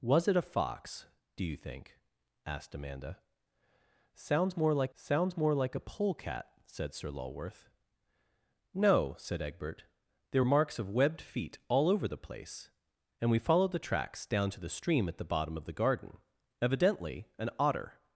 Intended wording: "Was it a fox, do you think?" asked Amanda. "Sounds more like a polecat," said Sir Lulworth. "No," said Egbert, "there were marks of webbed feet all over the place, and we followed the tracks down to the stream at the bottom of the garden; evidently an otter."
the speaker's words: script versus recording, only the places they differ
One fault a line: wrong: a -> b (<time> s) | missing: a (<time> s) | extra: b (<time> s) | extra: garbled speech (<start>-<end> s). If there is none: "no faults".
extra: sounds more like (4.9 s)
missing: were (10.4 s)